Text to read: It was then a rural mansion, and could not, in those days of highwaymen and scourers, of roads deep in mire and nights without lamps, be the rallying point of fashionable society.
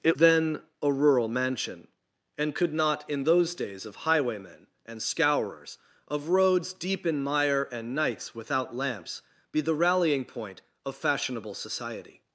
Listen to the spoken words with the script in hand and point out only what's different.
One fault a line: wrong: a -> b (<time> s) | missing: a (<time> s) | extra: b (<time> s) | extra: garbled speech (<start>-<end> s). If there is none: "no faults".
missing: was (0.2 s)